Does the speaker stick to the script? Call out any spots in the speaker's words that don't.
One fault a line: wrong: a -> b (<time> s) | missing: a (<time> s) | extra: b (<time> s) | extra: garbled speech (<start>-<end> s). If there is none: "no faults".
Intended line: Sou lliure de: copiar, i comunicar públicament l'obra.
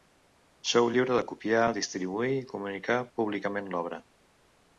extra: distribuir (1.8 s)